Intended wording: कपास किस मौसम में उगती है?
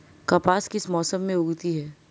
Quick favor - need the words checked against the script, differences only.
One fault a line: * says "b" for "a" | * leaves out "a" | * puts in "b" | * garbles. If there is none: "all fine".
all fine